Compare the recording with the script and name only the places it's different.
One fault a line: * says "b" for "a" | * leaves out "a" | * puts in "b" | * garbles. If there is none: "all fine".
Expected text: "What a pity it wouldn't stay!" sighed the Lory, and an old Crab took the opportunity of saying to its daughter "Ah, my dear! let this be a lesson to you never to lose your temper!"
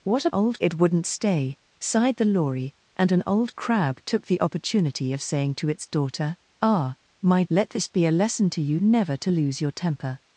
* says "old" for "pity"
* leaves out "dear"